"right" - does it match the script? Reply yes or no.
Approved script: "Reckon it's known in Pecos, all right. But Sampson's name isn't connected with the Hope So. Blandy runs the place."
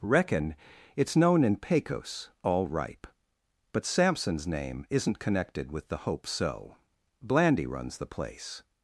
no